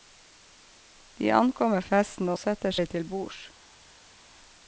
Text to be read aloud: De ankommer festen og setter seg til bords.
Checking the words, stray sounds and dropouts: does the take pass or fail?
pass